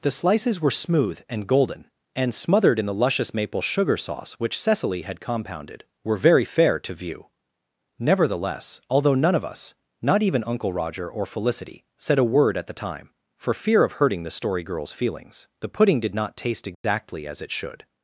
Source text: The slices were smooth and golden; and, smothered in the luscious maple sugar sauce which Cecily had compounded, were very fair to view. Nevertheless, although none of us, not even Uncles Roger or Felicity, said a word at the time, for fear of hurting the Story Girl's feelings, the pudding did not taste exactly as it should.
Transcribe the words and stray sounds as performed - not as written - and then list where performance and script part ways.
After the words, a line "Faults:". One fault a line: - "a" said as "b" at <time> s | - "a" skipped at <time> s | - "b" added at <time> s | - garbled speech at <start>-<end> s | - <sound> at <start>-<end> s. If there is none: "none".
The slices were smooth and golden; and, smothered in the luscious maple sugar sauce which Cecily had compounded, were very fair to view. Nevertheless, although none of us, not even Uncle Roger or Felicity, said a word at the time, for fear of hurting the Story Girl's feelings, the pudding did not taste exactly as it should.
Faults:
- "Uncles" said as "Uncle" at 10.5 s
- dropout at 16.7-16.8 s